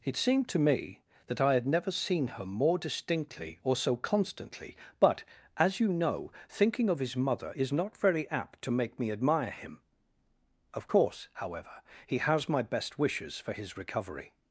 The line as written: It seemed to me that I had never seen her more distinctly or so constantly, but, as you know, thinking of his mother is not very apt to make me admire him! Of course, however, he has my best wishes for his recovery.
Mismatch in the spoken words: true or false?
false